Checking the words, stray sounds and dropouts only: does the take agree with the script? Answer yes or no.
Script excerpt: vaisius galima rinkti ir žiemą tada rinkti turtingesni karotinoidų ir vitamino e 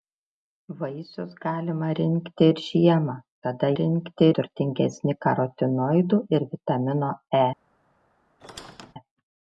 no